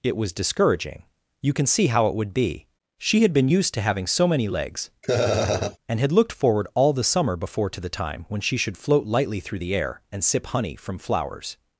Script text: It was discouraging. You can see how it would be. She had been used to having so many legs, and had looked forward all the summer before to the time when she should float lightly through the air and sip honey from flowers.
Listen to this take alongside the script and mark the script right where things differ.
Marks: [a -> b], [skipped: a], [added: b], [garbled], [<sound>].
It was discouraging. You can see how it would be. She had been used to having so many legs, [laugh] and had looked forward all the summer before to the time when she should float lightly through the air and sip honey from flowers.